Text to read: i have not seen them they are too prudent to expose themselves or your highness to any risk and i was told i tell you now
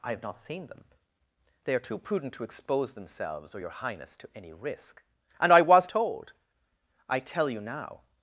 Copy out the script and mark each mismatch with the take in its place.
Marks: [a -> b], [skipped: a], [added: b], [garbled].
i have not seen them they are too prudent to expose themselves or your highness to any risk and i was told i tell you now